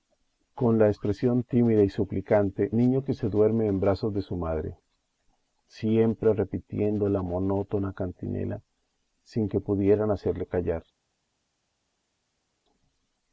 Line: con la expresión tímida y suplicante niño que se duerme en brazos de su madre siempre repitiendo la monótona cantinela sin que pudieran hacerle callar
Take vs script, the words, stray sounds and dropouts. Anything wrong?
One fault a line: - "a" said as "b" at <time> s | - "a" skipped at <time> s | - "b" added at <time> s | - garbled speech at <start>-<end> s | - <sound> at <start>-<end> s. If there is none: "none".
none